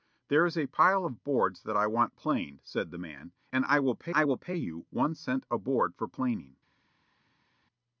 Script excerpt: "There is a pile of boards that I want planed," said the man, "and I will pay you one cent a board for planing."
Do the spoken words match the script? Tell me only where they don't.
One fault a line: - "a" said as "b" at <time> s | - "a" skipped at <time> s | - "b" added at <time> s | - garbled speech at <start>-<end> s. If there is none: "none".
- "I will pay" added at 4.1 s